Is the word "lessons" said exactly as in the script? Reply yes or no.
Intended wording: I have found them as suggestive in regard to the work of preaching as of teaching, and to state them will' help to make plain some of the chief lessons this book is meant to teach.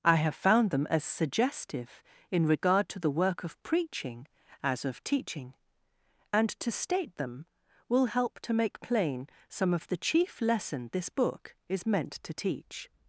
no